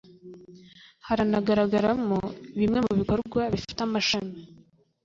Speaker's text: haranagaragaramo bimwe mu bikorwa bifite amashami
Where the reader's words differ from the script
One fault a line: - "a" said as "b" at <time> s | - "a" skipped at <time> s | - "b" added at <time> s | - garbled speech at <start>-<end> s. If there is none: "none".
none